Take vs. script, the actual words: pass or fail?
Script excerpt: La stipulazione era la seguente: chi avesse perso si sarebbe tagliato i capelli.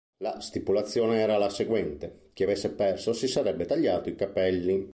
pass